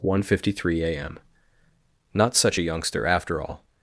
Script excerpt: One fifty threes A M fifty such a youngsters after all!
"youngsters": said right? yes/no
no